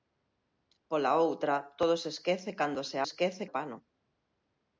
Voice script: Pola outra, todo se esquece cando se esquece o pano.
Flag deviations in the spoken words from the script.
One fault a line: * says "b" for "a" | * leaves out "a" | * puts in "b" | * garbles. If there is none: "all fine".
all fine